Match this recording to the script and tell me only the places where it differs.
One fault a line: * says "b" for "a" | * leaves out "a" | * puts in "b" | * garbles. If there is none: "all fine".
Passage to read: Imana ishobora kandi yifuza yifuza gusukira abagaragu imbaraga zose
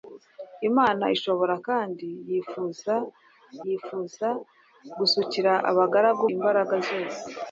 all fine